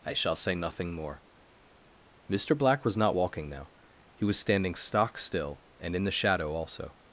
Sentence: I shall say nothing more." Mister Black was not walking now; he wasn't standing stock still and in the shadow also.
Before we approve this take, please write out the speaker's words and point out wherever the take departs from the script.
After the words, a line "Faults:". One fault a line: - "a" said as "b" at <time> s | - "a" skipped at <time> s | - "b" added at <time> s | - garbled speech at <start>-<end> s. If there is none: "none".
I shall say nothing more." Mister Black was not walking now; he was standing stock still and in the shadow also.
Faults:
- "wasn't" said as "was" at 4.2 s